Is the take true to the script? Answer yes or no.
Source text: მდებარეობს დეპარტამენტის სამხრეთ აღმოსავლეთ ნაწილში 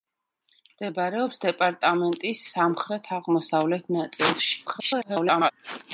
no